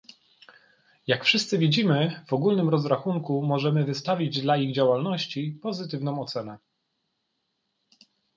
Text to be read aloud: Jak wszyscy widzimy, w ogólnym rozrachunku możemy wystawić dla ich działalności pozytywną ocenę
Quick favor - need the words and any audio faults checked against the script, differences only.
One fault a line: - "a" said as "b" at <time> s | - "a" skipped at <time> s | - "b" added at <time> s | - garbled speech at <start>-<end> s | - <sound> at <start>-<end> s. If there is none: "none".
none